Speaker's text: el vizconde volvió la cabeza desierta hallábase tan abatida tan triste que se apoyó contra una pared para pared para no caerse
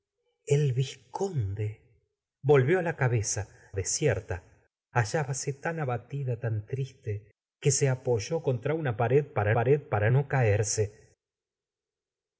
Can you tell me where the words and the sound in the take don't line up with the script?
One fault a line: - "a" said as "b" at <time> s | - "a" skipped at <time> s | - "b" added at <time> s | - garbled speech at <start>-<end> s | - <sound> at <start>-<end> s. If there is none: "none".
none